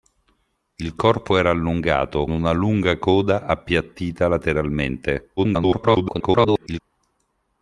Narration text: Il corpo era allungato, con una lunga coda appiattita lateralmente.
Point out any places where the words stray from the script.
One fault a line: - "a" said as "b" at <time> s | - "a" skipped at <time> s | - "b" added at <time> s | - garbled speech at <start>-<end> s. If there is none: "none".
- "con" skipped at 2.2 s
- garbled speech at 5.4-6.8 s